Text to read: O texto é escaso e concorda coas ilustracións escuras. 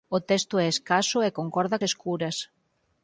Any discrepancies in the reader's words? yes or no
yes